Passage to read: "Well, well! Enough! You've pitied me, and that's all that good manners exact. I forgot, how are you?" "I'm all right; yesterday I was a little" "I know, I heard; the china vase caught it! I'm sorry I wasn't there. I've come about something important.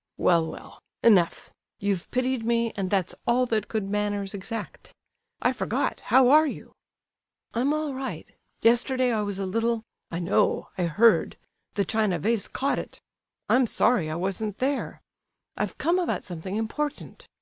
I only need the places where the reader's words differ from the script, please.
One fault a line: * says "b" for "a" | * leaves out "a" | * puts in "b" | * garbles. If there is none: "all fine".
all fine